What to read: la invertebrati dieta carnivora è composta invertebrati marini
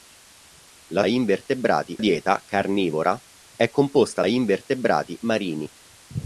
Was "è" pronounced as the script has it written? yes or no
yes